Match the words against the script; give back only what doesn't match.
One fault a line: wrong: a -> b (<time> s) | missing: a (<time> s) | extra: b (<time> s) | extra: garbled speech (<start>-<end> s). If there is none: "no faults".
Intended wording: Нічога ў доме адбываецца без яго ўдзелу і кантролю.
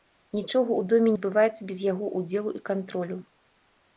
no faults